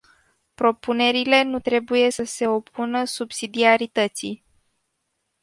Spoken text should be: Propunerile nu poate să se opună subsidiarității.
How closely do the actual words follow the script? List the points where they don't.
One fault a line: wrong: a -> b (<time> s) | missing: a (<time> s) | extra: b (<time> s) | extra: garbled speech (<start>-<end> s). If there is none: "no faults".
wrong: poate -> trebuie (1.6 s)